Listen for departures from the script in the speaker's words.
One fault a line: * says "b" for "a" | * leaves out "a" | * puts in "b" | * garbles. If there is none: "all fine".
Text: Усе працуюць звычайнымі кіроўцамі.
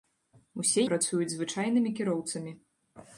all fine